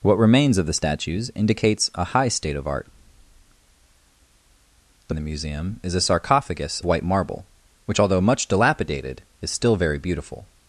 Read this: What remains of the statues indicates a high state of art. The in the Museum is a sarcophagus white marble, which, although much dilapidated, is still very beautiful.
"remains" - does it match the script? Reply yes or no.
yes